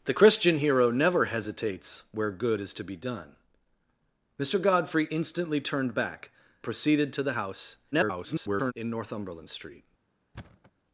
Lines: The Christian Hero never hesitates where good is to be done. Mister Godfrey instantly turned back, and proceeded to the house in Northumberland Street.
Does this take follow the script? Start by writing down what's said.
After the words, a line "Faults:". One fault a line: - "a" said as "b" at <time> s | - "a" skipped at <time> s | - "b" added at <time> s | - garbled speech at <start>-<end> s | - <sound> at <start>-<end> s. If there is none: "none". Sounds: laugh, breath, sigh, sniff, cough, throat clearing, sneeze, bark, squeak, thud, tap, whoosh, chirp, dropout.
The Christian Hero never hesitates where good is to be done. Mister Godfrey instantly turned back, proceeded to the house [garbled] in Northumberland Street.
Faults:
- "and" skipped at 6.3 s
- garbled speech at 7.9-8.7 s
- thud at 10.3-10.7 s